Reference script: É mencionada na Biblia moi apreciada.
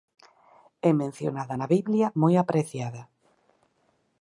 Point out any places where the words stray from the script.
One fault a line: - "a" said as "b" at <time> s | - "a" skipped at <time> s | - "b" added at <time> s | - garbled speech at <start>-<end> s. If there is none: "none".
none